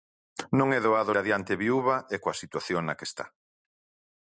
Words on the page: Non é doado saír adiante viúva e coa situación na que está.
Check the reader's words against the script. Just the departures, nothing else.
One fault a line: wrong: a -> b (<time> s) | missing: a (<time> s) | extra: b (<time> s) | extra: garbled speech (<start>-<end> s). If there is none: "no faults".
missing: saír (1.1 s)